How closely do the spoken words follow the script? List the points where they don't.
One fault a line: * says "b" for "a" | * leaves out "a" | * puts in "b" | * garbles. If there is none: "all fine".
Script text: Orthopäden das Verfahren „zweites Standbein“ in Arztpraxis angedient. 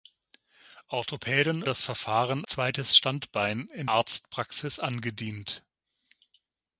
all fine